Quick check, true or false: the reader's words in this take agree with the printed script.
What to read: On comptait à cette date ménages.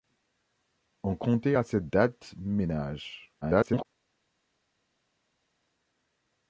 false